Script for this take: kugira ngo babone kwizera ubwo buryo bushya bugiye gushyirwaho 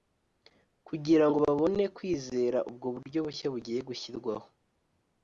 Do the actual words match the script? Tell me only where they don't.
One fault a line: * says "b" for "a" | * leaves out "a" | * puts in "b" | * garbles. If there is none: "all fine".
all fine